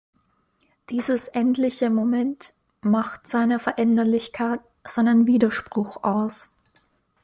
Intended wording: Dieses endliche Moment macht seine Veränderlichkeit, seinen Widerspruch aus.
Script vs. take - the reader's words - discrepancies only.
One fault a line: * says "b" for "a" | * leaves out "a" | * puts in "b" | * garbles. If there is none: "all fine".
all fine